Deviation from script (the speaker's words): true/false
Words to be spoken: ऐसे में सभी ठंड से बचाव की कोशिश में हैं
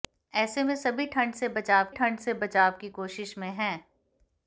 true